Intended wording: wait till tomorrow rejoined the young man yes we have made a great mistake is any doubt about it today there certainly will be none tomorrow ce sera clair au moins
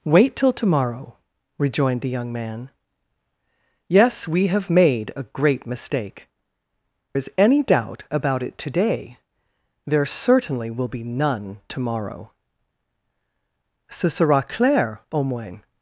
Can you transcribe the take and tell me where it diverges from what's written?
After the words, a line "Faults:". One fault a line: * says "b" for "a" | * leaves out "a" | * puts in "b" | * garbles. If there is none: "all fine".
wait till tomorrow rejoined the young man yes we have made a great mistake is any doubt about it today there certainly will be none tomorrow ce sera clair au moins
Faults:
all fine